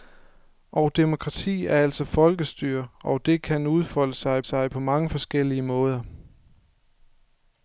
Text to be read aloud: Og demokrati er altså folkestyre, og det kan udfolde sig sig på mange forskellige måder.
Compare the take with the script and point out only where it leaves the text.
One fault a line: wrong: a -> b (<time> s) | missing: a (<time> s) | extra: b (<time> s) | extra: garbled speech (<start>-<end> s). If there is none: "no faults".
no faults